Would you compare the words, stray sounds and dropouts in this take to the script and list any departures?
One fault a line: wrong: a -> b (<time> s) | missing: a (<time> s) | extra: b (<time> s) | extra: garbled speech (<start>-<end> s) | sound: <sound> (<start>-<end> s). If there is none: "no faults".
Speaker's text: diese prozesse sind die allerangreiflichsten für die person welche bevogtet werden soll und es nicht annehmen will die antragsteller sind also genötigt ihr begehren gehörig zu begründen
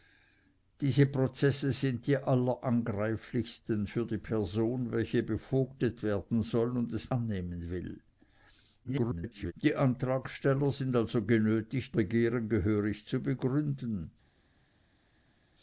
missing: nicht (7.1 s)
extra: garbled speech (8.8-9.5 s)
missing: ihr (12.0 s)